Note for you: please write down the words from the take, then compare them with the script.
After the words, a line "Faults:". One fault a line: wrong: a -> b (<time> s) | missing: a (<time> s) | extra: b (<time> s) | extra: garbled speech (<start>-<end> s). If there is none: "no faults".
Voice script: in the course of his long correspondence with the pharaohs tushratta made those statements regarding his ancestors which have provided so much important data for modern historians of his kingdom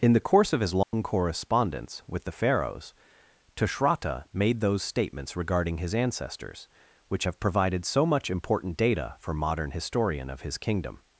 in the course of his long correspondence with the pharaohs tushratta made those statements regarding his ancestors which have provided so much important data for modern historian of his kingdom
Faults:
wrong: historians -> historian (9.7 s)